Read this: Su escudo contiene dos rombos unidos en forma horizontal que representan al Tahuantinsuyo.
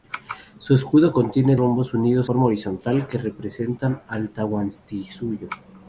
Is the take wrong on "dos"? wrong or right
wrong